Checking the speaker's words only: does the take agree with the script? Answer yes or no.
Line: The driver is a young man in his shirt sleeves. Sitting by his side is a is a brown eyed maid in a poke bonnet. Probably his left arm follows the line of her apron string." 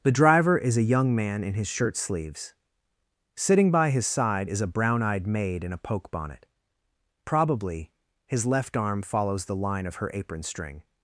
no